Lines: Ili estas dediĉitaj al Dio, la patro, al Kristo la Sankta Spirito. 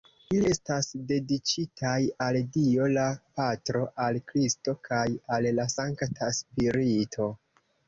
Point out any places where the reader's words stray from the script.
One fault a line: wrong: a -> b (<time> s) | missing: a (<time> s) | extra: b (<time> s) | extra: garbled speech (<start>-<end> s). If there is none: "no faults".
extra: kaj al (4.9 s)